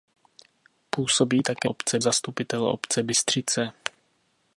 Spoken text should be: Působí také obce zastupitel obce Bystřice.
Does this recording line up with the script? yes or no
yes